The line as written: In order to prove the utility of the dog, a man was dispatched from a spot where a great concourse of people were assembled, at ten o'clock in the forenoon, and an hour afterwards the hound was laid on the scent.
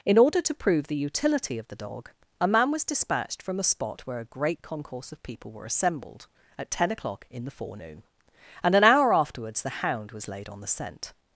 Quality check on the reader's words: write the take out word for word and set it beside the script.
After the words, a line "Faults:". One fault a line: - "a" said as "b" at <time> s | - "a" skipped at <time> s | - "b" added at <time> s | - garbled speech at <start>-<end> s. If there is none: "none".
In order to prove the utility of the dog, a man was dispatched from a spot where a great concourse of people were assembled, at ten o'clock in the forenoon, and an hour afterwards the hound was laid on the scent.
Faults:
none